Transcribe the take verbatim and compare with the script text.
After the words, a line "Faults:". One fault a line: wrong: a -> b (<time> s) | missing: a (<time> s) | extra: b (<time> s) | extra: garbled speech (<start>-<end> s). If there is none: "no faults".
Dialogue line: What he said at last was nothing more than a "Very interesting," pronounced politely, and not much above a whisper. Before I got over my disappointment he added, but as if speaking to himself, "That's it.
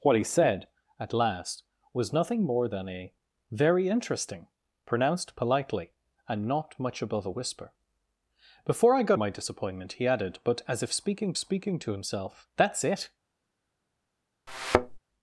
What he said at last was nothing more than a "Very interesting," pronounced politely, and not much above a whisper. Before I got my disappointment he added, but as if speaking speaking to himself, "That's it.
Faults:
missing: over (9.2 s)
extra: speaking (11.4 s)